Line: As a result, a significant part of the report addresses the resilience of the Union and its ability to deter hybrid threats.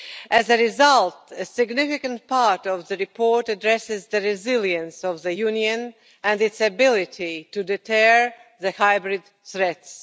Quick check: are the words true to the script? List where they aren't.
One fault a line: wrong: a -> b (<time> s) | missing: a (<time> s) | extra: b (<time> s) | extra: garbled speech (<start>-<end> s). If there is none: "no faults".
no faults